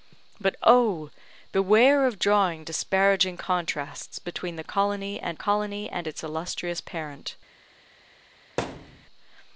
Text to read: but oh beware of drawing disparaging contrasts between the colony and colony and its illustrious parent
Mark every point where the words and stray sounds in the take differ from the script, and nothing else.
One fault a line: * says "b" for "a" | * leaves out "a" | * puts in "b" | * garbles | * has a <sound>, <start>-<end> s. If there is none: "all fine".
* has a thud, 8.6-9.1 s